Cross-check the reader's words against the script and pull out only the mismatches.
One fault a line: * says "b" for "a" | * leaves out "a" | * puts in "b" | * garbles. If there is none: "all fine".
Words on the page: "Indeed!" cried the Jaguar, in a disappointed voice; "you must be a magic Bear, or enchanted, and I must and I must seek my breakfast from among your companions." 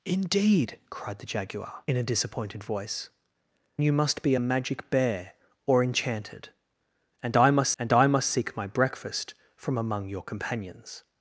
all fine